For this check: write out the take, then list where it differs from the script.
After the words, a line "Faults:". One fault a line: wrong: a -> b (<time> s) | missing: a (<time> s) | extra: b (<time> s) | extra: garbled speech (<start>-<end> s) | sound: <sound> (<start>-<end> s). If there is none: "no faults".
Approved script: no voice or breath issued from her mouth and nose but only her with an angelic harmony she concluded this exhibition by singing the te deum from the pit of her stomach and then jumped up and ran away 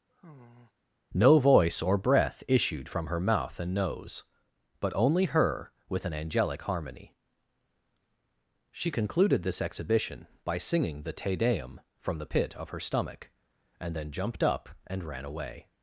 no voice or breath issued from her mouth and nose but only her with an angelic harmony she concluded this exhibition by singing the te deum from the pit of her stomach and then jumped up and ran away
Faults:
sound: sigh (0.1-0.7 s)